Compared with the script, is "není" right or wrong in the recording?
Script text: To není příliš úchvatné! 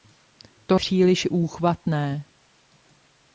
wrong